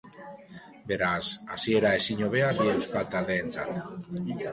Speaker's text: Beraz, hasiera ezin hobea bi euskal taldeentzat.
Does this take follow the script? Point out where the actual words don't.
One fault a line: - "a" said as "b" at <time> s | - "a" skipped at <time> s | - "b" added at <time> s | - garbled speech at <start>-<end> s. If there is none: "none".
none